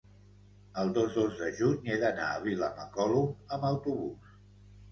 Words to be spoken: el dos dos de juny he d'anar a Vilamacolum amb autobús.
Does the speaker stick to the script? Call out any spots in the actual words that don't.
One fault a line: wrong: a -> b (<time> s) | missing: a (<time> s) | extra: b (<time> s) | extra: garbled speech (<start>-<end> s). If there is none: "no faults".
no faults